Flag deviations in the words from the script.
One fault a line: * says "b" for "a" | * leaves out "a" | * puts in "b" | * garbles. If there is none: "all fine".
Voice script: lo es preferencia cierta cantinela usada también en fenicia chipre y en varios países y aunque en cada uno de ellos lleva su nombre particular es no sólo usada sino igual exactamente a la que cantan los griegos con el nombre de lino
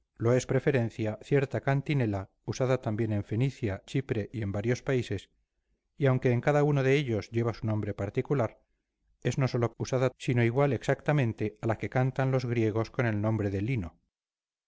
all fine